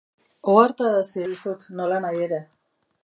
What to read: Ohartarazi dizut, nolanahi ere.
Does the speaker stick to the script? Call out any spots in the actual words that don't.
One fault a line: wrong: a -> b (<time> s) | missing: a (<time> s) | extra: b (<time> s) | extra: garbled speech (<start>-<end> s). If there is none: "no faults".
no faults